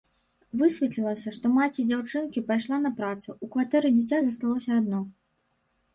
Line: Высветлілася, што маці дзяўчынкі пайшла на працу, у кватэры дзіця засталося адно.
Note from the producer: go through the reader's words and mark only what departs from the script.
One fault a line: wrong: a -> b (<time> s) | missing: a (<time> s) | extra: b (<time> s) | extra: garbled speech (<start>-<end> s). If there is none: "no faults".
no faults